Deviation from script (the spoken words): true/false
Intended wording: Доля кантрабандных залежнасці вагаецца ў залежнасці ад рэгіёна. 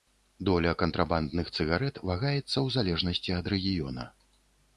true